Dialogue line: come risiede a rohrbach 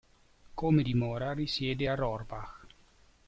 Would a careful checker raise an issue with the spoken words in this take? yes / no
yes